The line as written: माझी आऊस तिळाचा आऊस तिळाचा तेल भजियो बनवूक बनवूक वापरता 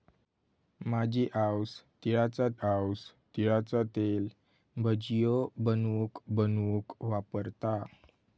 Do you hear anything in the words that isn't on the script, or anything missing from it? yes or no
no